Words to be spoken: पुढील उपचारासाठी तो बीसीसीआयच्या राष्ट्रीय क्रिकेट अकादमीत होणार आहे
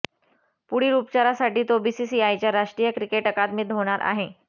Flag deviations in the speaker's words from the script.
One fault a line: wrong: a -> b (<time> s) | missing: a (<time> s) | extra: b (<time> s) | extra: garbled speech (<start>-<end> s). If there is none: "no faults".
no faults